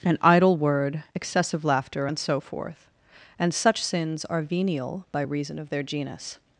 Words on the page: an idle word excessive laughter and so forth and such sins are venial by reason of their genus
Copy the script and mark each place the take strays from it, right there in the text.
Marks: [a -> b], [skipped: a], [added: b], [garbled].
an idle word excessive laughter and so forth and such sins are venial by reason of their genus